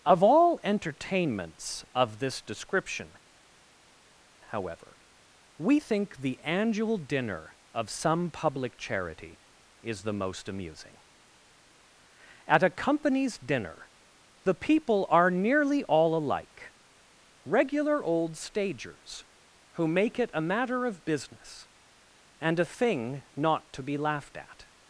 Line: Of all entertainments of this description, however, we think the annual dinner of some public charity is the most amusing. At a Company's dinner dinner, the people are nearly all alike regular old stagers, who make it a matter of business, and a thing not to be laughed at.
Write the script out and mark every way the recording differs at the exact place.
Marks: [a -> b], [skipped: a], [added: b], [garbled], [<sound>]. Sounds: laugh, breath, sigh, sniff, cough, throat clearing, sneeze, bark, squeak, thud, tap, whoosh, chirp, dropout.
Of all entertainments of this description, however, we think the annual dinner of some public charity is the most amusing. At a Company's dinner [skipped: dinner,] the people are nearly all alike regular old stagers, who make it a matter of business, and a thing not to be laughed at.